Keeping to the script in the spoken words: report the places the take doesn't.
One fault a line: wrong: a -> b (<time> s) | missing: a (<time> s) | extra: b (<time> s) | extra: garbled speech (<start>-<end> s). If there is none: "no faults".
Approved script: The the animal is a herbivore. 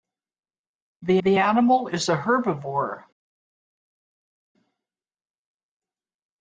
no faults